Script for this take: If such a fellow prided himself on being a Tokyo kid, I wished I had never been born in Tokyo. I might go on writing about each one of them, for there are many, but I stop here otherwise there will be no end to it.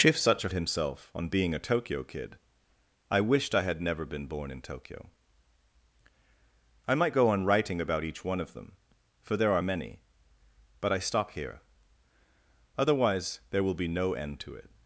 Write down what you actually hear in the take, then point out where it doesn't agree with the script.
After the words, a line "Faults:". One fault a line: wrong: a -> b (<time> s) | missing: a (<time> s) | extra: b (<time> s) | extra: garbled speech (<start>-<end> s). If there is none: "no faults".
If such a himself on being a Tokyo kid, I wished I had never been born in Tokyo. I might go on writing about each one of them, for there are many, but I stop here otherwise there will be no end to it.
Faults:
missing: fellow prided (0.5 s)